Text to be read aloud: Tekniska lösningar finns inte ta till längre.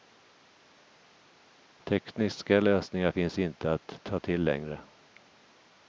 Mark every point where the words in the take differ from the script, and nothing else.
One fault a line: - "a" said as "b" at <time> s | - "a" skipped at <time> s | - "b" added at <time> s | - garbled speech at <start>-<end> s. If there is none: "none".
- "att" added at 3.7 s